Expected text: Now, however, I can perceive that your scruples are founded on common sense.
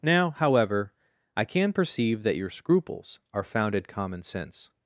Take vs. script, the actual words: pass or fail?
fail